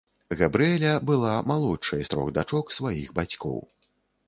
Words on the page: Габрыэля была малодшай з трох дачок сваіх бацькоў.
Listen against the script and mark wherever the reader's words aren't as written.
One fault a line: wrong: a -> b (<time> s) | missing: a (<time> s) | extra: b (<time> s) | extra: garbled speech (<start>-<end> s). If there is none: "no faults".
no faults